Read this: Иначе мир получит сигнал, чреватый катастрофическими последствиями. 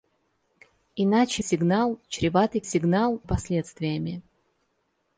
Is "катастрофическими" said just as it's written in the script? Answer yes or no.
no